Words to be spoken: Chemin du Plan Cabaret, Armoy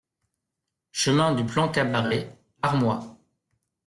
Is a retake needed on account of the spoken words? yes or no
no